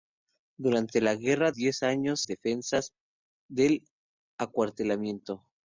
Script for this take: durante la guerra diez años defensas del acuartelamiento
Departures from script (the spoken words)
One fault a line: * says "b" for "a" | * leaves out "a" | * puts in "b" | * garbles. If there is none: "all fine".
all fine